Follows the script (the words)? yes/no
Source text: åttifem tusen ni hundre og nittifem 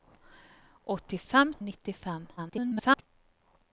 no